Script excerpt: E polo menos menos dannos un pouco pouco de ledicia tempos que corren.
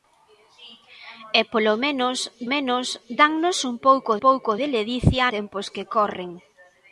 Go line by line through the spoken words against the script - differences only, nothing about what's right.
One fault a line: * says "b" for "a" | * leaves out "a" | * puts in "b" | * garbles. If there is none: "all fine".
all fine